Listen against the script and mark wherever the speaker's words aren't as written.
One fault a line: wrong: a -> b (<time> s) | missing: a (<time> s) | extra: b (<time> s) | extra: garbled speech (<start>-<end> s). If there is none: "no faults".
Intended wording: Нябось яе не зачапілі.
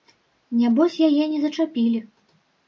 no faults